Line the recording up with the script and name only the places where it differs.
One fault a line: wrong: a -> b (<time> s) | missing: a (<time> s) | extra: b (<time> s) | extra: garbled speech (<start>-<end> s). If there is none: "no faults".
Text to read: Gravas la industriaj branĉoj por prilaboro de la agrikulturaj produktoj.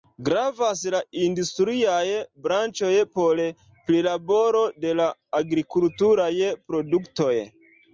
no faults